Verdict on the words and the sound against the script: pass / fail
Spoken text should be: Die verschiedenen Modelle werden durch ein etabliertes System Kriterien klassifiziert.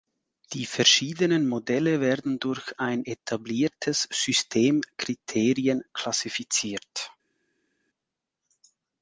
pass